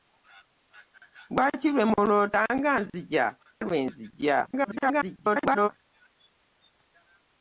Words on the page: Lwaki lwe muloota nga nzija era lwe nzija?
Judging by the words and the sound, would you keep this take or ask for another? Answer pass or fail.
fail